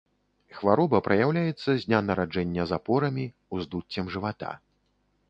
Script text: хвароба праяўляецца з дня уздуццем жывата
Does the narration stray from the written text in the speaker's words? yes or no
yes